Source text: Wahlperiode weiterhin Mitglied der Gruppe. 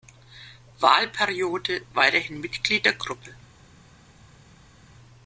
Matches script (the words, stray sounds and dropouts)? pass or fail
pass